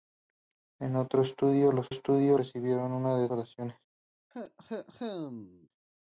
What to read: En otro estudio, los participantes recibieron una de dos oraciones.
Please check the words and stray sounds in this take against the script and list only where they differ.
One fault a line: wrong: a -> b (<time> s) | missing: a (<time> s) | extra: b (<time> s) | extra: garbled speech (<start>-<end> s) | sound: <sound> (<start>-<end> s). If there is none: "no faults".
wrong: participantes -> estudio (1.9 s)
missing: dos (3.3 s)
sound: cough (4.3-5.7 s)